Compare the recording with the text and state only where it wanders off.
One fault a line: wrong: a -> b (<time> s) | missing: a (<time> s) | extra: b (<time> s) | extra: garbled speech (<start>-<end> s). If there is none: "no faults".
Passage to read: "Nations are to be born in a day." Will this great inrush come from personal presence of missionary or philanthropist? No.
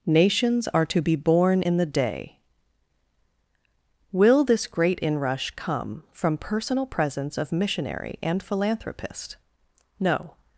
wrong: a -> the (1.8 s)
wrong: or -> and (8.2 s)